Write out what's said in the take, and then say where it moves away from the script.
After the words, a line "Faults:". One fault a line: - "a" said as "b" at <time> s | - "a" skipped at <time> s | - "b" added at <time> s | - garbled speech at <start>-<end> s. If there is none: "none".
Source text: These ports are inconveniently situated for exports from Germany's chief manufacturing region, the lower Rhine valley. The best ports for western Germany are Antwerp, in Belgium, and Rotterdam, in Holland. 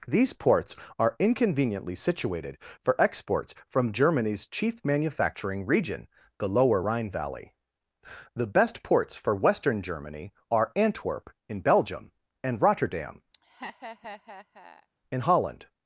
These ports are inconveniently situated for exports from Germany's chief manufacturing region, the lower Rhine valley. The best ports for western Germany are Antwerp, in Belgium, and Rotterdam, in Holland.
Faults:
none